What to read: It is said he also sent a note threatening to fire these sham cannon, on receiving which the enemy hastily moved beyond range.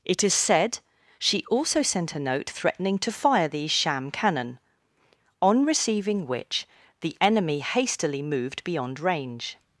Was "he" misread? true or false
true